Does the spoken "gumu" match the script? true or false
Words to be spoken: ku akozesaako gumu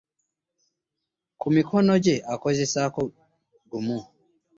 true